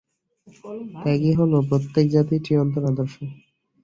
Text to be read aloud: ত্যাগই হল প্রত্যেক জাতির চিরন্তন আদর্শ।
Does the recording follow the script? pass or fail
pass